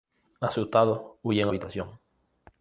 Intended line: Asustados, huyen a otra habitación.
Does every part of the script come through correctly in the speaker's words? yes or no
no